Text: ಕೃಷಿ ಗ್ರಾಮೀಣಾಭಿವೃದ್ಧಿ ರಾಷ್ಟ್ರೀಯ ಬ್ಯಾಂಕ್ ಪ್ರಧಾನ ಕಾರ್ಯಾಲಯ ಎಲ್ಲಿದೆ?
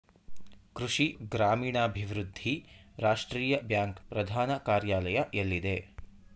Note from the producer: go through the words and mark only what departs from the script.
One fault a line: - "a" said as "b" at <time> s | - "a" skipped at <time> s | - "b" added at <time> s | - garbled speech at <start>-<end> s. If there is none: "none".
none